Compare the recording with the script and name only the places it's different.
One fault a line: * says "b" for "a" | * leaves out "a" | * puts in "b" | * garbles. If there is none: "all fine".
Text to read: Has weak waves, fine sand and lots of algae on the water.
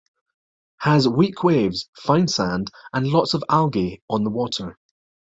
all fine